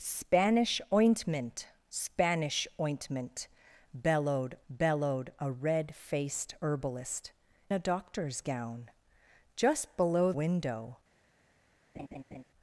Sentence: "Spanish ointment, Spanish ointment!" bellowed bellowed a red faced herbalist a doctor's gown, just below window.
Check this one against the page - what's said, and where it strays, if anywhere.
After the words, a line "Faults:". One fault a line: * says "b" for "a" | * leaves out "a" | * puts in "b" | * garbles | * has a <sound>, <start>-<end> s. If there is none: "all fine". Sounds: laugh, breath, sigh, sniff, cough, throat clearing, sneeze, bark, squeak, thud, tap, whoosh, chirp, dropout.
"Spanish ointment, Spanish ointment!" bellowed bellowed a red faced herbalist a doctor's gown, just below window.
Faults:
* has a laugh, 11.9-12.4 s